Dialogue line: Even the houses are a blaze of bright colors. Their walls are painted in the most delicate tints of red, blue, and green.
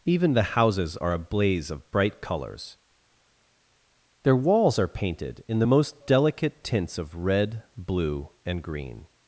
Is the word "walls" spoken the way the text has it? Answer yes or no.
yes